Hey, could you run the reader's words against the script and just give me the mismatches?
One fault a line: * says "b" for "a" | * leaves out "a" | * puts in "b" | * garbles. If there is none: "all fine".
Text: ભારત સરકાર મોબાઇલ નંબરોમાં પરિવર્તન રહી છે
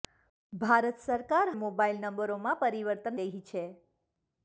all fine